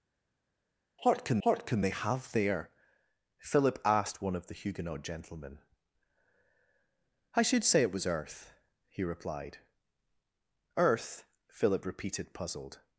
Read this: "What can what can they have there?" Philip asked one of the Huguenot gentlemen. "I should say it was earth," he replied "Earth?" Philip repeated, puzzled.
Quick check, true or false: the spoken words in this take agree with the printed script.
true